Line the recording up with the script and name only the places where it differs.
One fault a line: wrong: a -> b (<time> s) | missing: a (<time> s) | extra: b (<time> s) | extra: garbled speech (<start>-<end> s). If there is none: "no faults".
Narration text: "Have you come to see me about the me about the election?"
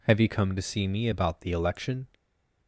missing: me about the (1.5 s)